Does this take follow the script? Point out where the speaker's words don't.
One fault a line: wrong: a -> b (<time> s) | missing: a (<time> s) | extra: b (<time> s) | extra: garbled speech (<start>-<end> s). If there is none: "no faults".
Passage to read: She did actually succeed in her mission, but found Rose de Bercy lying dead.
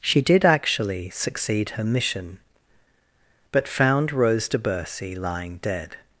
missing: in (1.7 s)